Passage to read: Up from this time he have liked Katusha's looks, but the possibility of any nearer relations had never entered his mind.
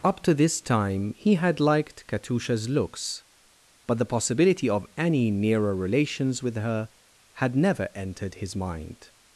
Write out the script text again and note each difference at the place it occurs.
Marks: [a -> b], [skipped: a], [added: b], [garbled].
Up [from -> to] this time he [have -> had] liked Katusha's looks, but the possibility of any nearer relations [added: with her] had never entered his mind.